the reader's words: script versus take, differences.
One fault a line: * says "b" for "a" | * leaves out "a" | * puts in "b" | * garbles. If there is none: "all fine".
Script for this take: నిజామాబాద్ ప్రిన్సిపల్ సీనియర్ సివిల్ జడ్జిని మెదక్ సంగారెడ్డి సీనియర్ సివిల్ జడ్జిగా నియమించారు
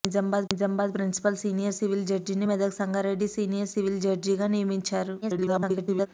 * puts in "నిజామాబాద్"
* garbles